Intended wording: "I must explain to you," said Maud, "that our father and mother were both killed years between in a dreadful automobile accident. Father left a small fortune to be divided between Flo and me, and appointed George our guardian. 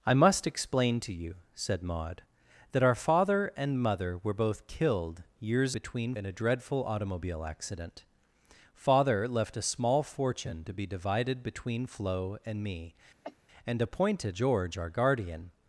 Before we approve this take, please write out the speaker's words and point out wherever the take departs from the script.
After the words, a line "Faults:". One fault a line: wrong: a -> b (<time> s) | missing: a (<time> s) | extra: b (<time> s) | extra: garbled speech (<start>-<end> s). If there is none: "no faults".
"I must explain to you," said Maud, "that our father and mother were both killed years between in a dreadful automobile accident. Father left a small fortune to be divided between Flo and me, and appointed George our guardian.
Faults:
no faults